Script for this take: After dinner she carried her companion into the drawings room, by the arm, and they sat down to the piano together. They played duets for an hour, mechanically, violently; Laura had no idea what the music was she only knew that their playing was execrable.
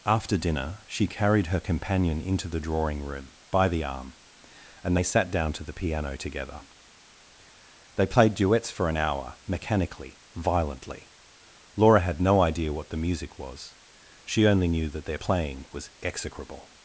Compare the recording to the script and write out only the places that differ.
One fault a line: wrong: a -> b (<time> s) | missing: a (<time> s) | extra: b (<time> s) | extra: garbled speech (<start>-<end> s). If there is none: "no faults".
wrong: drawings -> drawing (2.6 s)